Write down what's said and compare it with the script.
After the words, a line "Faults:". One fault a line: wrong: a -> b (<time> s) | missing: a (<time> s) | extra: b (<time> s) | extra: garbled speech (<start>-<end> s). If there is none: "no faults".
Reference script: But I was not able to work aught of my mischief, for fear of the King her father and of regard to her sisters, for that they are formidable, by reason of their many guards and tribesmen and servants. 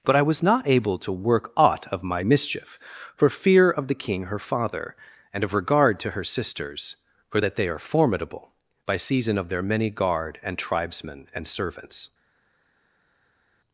But I was not able to work aught of my mischief, for fear of the King her father and of regard to her sisters, for that they are formidable, by season of their many guard and tribesmen and servants.
Faults:
wrong: reason -> season (9.0 s)
wrong: guards -> guard (9.9 s)